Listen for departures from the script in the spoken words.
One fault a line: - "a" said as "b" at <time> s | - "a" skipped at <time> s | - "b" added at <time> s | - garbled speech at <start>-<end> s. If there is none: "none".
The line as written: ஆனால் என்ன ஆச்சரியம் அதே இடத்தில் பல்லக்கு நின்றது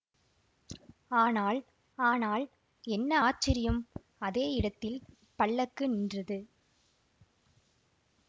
- "ஆனால்" added at 2.0 s